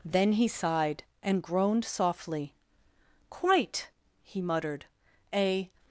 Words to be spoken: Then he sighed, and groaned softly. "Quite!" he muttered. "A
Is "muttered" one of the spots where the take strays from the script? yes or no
no